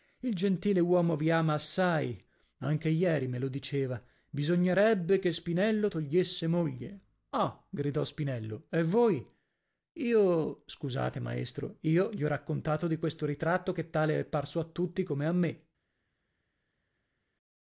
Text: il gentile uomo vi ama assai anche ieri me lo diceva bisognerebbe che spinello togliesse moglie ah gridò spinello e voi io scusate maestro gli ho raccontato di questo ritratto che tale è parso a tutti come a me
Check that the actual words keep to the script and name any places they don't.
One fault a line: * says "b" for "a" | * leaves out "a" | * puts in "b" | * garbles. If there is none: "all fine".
* puts in "io"